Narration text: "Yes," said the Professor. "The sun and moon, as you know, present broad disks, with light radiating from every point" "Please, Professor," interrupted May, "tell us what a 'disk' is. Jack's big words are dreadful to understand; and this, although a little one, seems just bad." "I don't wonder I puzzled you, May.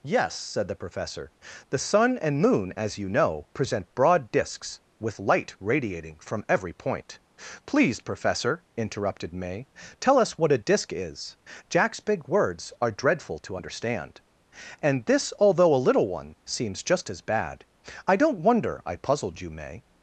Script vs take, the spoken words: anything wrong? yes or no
yes